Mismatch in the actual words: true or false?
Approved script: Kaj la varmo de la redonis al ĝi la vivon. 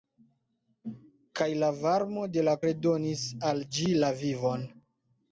false